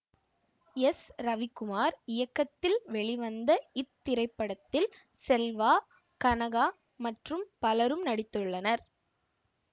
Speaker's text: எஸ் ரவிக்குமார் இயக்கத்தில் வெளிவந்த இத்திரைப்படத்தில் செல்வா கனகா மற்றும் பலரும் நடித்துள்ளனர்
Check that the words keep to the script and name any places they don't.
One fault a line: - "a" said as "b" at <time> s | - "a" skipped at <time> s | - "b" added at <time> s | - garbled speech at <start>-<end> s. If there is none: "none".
none